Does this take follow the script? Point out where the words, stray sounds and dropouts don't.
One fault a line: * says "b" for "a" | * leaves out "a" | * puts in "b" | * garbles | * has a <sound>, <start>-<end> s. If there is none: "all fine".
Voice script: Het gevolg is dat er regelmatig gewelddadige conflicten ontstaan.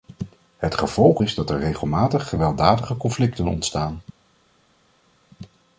all fine